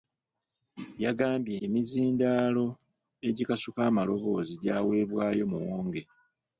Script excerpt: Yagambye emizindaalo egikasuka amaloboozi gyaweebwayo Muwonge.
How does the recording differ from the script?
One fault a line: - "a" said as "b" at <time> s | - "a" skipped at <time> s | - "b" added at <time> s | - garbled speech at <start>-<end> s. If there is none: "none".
none